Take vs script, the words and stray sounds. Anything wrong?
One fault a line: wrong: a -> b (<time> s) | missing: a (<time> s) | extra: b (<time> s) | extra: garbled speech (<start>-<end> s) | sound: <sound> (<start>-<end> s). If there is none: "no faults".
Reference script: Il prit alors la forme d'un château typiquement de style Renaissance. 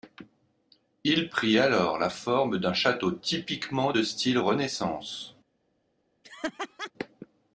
sound: laugh (6.2-6.9 s)